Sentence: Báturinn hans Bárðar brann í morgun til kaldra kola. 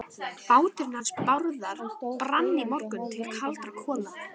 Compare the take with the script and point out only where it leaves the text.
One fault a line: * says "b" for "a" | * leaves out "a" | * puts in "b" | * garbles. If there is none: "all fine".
all fine